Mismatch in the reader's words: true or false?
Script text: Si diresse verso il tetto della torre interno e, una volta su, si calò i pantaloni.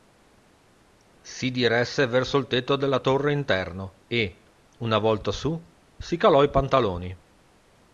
false